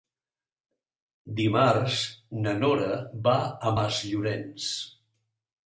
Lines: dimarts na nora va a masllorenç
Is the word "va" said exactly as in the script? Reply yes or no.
yes